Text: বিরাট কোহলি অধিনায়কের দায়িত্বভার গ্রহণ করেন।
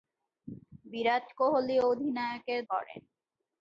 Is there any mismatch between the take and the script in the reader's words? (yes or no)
yes